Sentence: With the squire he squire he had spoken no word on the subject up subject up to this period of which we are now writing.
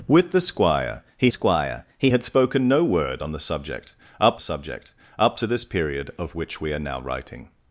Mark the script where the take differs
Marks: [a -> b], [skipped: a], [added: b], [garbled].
With the squire he squire he had spoken no word on the subject up subject up to this period of which we are now writing.